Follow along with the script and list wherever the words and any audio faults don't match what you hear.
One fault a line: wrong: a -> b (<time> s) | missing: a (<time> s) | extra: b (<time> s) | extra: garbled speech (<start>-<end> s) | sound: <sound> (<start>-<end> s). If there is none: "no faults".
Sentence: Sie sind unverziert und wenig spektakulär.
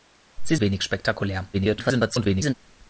missing: sind unverziert und (0.6 s)
extra: garbled speech (1.5-2.5 s)